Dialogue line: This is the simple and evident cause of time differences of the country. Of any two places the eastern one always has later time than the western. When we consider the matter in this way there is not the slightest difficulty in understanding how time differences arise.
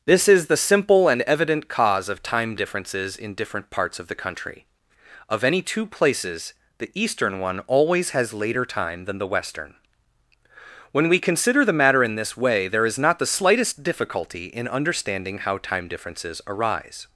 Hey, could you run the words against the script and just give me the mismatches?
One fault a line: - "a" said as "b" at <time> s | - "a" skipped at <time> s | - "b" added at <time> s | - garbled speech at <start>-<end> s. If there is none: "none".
- "in different parts" added at 3.1 s